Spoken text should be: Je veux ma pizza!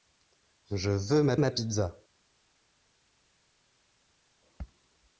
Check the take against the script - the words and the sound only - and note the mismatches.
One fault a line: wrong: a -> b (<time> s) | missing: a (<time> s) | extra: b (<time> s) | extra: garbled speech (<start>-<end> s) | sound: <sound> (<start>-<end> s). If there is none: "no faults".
extra: ma (1.4 s)